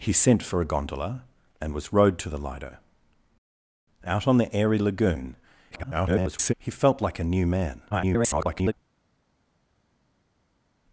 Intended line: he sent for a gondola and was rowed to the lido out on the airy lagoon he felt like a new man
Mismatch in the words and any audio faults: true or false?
true